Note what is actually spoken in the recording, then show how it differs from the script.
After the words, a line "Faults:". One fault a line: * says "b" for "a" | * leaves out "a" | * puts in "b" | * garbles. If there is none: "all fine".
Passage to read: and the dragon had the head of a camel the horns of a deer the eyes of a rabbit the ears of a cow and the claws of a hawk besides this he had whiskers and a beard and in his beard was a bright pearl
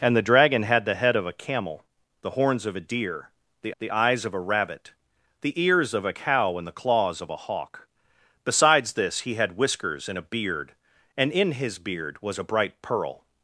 and the dragon had the head of a camel the horns of a deer the the eyes of a rabbit the ears of a cow and the claws of a hawk besides this he had whiskers and a beard and in his beard was a bright pearl
Faults:
* puts in "the"